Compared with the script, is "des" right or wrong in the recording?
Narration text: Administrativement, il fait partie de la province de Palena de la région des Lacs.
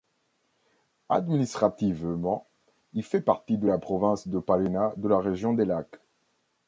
right